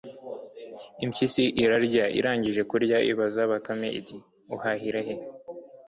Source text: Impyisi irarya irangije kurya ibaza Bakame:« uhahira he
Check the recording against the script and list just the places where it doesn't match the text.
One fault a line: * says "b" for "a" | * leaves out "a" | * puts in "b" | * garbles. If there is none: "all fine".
* puts in "iti"